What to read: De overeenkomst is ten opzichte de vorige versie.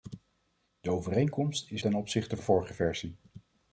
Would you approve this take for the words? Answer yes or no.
yes